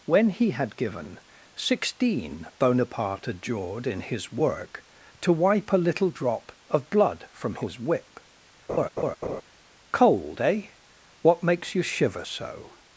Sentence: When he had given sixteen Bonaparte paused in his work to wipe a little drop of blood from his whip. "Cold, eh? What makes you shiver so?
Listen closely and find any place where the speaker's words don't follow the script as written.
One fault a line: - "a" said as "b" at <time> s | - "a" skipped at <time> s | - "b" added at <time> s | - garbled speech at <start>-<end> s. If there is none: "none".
- "paused" said as "adjured" at 3.3 s